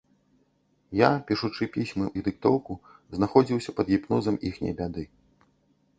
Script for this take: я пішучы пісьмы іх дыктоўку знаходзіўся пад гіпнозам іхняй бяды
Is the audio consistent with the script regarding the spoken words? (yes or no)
yes